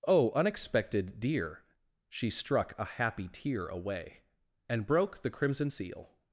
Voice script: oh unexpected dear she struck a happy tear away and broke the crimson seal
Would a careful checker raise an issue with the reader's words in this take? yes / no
no